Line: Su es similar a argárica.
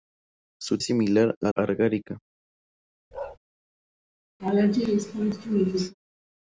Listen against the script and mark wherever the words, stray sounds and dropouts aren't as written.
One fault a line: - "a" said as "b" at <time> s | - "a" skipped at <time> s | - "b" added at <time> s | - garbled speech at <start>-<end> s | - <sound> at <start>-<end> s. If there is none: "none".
- bark at 3.1-3.4 s
- laugh at 4.4-5.9 s